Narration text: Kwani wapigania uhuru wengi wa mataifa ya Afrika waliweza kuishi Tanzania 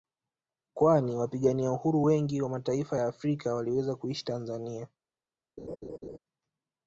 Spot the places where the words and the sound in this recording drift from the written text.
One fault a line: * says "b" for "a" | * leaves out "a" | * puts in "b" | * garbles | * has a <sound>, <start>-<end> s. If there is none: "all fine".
* has a laugh, 5.6-6.2 s